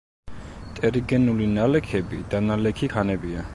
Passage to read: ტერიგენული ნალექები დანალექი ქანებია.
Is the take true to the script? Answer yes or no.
yes